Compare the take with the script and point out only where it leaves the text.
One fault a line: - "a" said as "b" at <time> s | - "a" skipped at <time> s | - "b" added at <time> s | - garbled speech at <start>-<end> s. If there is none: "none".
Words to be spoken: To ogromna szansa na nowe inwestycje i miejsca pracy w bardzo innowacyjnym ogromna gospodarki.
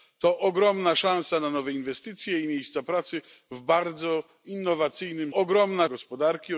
none